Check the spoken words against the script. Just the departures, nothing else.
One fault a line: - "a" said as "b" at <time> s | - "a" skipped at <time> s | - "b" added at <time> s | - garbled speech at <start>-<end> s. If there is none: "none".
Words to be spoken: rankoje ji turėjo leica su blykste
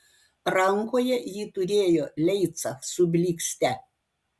none